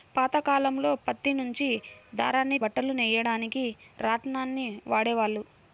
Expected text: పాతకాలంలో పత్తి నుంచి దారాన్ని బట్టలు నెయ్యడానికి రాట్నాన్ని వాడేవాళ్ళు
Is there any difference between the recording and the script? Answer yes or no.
no